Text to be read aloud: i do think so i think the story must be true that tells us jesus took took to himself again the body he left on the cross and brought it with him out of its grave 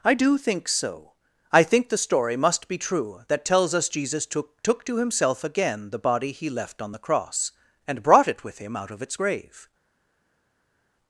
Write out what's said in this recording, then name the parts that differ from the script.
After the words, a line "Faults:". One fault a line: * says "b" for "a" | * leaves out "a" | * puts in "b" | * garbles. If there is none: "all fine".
i do think so i think the story must be true that tells us jesus took took to himself again the body he left on the cross and brought it with him out of its grave
Faults:
all fine